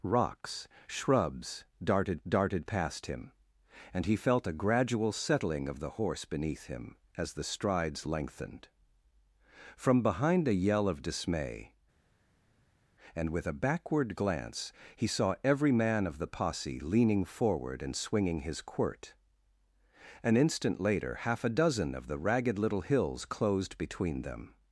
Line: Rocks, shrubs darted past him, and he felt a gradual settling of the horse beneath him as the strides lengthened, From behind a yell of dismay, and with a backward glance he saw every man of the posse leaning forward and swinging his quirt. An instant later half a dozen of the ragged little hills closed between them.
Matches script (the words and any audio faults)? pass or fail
fail